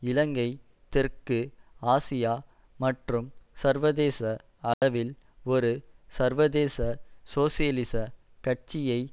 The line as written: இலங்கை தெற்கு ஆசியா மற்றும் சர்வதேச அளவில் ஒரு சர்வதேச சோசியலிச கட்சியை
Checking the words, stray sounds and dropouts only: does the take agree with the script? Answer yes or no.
no